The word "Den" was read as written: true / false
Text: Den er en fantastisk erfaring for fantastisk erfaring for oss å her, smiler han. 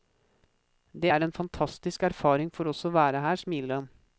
false